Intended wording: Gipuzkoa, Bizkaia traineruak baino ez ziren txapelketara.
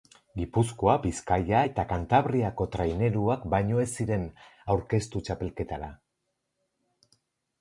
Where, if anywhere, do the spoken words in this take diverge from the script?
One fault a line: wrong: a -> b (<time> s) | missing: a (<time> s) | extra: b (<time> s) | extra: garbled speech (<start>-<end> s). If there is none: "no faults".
extra: eta Kantabriako (1.7 s)
extra: aurkeztu (4.7 s)